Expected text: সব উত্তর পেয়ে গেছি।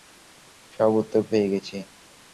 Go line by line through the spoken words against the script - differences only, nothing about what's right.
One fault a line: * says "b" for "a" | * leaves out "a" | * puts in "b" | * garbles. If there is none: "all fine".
all fine